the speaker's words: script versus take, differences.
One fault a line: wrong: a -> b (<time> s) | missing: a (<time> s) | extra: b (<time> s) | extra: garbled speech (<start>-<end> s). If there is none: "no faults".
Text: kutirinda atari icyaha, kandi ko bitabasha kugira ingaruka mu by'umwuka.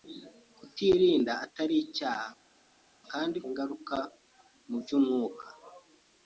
missing: ko bitabasha kugira (3.4 s)